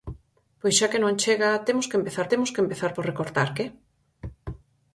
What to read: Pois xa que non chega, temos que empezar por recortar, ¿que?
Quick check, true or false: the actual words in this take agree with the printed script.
false